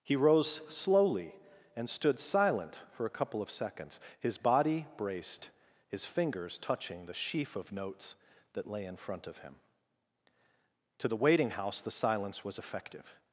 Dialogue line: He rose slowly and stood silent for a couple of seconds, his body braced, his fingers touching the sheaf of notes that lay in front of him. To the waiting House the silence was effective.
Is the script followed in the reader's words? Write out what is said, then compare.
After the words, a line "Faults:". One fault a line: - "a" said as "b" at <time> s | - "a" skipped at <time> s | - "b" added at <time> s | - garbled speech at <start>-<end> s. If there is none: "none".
He rose slowly and stood silent for a couple of seconds, his body braced, his fingers touching the sheaf of notes that lay in front of him. To the waiting House the silence was effective.
Faults:
none